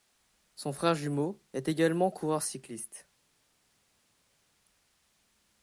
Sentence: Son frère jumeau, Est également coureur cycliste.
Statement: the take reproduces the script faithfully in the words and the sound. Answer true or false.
true